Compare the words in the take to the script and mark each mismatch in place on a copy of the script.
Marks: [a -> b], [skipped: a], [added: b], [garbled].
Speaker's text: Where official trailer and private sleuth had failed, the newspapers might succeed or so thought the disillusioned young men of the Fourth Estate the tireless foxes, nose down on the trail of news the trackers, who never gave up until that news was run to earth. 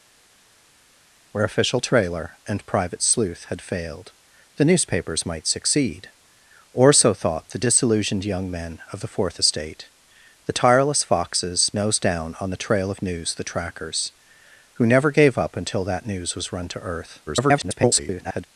Where official trailer and private sleuth had failed, the newspapers might succeed or so thought the disillusioned young men of the Fourth Estate the tireless foxes, nose down on the trail of news the trackers, who never gave up until that news was run to earth. [garbled]